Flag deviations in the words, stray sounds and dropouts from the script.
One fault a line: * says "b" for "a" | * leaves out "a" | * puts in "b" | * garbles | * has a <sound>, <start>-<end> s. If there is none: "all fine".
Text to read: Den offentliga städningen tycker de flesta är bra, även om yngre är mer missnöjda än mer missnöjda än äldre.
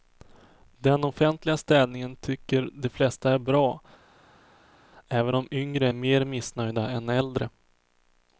* leaves out "mer missnöjda än"